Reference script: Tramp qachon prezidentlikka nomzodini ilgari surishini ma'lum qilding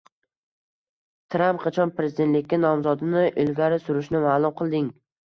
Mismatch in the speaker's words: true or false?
false